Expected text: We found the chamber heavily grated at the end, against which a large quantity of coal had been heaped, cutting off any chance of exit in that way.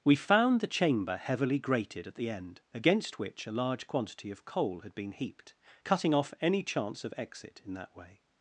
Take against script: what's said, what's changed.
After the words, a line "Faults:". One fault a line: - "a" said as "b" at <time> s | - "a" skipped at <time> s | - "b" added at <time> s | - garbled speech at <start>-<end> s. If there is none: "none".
We found the chamber heavily grated at the end, against which a large quantity of coal had been heaped, cutting off any chance of exit in that way.
Faults:
none